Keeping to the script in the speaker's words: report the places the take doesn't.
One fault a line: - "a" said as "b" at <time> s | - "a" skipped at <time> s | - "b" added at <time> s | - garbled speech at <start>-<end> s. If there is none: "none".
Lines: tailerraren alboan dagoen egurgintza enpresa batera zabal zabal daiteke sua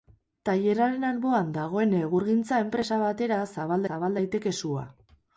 none